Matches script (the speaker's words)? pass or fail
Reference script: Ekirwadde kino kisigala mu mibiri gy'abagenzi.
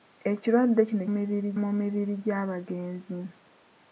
fail